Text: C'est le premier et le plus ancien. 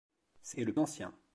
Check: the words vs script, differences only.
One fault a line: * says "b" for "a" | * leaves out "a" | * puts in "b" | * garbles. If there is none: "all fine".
* leaves out "le premier"
* leaves out "plus"